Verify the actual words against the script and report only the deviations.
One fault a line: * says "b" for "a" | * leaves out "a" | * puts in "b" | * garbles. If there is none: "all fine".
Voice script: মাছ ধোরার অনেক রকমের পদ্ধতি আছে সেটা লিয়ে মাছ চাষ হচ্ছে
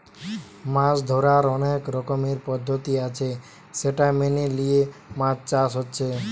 * puts in "মেনে"